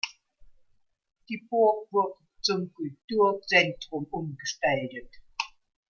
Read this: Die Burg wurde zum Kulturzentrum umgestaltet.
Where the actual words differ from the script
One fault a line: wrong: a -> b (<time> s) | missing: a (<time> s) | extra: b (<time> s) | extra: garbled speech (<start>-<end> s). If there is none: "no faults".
no faults